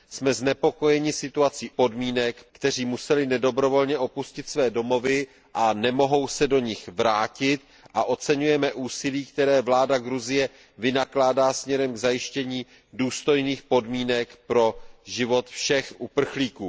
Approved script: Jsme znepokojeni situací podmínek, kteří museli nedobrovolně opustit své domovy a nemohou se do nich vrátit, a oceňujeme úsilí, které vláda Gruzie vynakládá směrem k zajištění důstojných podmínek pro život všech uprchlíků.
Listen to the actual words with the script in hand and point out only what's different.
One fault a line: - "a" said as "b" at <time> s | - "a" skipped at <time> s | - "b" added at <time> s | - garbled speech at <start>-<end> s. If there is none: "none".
none